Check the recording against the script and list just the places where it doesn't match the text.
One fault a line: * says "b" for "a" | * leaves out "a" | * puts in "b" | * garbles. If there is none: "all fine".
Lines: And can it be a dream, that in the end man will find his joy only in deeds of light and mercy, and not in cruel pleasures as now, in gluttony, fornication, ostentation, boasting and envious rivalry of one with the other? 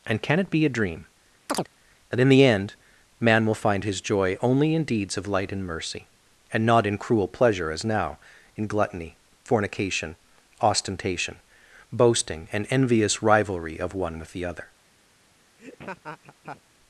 * says "pleasure" for "pleasures"